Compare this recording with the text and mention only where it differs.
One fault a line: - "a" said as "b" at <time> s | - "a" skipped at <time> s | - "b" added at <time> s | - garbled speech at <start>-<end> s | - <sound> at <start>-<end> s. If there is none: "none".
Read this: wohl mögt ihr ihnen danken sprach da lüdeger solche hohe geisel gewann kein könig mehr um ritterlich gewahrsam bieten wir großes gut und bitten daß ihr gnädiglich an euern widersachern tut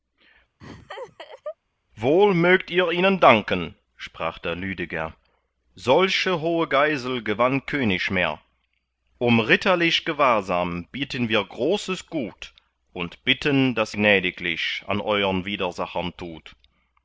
- laugh at 0.6-1.6 s
- "kein" skipped at 7.7 s
- "ihr" skipped at 13.9 s